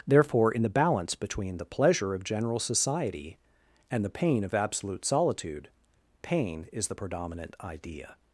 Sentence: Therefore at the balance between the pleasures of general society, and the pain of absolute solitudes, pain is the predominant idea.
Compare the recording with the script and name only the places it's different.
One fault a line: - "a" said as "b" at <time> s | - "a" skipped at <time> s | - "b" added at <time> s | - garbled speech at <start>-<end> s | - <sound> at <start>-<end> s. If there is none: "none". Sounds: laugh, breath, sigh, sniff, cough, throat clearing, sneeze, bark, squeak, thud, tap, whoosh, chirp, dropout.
- "at" said as "in" at 0.5 s
- "pleasures" said as "pleasure" at 1.6 s
- "solitudes" said as "solitude" at 5.0 s